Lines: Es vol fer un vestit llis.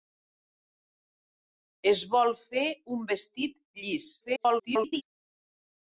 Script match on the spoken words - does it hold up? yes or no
no